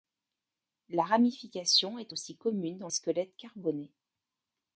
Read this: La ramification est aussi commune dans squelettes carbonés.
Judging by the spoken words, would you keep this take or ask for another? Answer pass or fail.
pass